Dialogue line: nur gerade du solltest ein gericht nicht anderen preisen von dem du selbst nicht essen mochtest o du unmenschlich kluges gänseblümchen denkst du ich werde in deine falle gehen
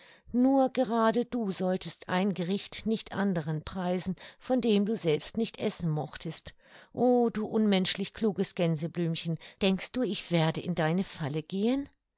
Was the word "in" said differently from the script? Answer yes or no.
no